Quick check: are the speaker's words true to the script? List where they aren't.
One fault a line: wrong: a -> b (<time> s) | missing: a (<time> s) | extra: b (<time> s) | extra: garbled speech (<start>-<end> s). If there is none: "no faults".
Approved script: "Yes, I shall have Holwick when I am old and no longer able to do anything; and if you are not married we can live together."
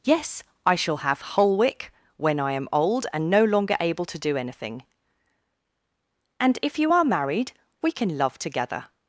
missing: not (7.0 s)
wrong: live -> love (8.2 s)